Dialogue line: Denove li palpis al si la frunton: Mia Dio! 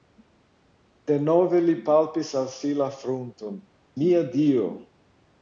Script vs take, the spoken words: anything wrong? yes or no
no